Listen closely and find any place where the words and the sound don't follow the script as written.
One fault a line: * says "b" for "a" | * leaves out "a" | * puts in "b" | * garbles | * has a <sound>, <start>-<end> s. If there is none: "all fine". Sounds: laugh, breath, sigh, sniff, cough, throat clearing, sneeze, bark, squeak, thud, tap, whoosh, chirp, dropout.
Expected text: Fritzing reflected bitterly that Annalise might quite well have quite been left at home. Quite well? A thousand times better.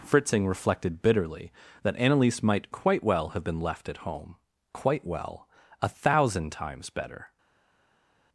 * leaves out "quite"